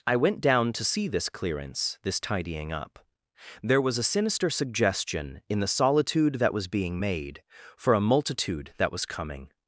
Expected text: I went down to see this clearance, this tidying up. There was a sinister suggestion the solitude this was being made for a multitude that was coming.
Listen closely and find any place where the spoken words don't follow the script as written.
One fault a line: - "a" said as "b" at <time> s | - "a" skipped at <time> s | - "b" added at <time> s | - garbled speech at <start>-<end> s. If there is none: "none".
- "in" added at 5.5 s
- "this" said as "that" at 6.3 s